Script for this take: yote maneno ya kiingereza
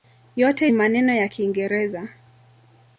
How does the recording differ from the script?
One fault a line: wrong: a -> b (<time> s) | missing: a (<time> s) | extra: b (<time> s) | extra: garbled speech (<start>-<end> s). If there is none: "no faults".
no faults